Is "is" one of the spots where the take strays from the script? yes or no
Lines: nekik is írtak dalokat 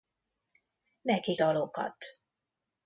yes